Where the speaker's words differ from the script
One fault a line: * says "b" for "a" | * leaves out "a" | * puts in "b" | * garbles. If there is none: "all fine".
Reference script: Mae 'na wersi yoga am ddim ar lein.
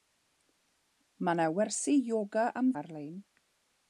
* leaves out "ddim"